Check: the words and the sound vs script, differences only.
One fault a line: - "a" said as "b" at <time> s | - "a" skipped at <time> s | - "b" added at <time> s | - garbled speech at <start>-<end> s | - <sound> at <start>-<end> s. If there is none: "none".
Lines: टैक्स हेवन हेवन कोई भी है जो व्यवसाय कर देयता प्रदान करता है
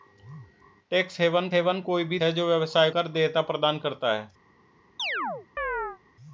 - chirp at 5.0-6.0 s